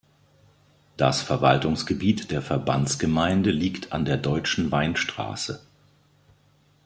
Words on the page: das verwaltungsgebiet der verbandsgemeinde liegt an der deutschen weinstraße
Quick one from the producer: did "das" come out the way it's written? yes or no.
yes